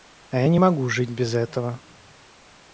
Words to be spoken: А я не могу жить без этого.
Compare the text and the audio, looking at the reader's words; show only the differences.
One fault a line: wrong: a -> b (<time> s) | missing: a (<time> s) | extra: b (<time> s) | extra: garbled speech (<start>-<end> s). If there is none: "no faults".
no faults